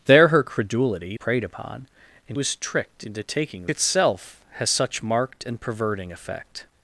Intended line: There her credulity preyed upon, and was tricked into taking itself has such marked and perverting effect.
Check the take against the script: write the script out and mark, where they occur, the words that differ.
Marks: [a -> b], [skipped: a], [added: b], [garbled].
There her credulity preyed upon, and was tricked into taking itself has such marked and perverting effect.